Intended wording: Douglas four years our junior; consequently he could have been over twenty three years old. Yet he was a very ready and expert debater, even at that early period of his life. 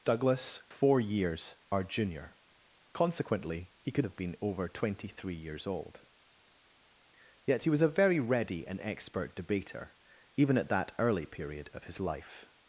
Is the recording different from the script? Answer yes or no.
no